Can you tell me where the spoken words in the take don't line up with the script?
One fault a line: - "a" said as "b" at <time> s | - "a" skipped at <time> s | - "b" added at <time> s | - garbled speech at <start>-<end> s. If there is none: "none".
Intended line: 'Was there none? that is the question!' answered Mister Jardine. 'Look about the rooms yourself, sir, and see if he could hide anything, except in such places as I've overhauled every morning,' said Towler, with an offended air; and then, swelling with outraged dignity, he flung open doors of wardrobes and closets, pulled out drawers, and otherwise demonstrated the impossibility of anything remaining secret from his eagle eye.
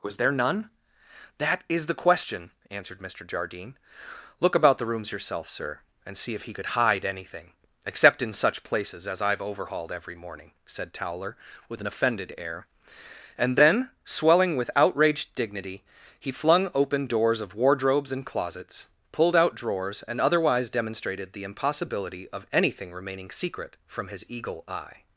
none